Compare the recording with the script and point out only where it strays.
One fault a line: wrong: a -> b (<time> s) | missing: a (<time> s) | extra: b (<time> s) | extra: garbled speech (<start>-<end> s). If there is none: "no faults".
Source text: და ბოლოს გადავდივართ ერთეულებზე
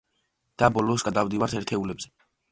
no faults